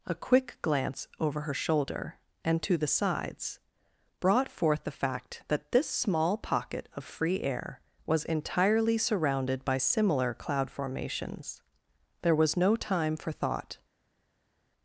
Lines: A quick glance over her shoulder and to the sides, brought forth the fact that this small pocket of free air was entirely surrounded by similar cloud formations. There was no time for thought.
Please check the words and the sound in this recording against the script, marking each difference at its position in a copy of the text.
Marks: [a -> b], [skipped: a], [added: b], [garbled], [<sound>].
A quick glance over her shoulder and to the sides, brought forth the fact that this small pocket of free air was entirely surrounded by similar cloud formations. There was no time for thought.